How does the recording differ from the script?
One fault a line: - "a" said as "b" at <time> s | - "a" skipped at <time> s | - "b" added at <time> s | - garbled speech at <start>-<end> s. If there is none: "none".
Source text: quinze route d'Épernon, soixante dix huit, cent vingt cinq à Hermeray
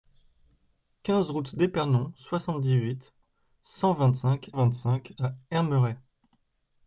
- "vingt cinq" added at 4.5 s